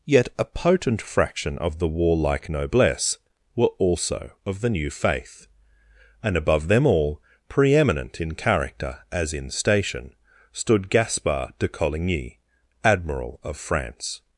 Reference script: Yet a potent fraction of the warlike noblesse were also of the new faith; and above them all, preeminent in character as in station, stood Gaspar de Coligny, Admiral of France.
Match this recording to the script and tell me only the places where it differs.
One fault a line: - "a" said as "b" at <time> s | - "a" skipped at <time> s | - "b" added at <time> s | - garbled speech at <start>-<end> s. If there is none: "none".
none